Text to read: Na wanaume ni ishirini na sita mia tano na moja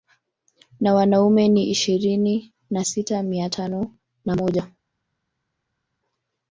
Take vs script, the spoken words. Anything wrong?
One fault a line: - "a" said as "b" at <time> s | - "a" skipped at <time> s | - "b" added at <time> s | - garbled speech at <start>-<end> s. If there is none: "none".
none